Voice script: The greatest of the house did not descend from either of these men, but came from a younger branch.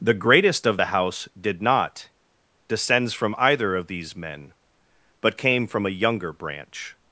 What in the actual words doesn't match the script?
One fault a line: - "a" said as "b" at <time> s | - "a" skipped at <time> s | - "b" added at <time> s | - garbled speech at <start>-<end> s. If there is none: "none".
- "descend" said as "descends" at 2.7 s